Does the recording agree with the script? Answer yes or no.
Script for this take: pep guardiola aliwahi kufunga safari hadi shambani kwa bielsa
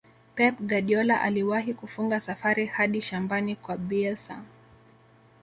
yes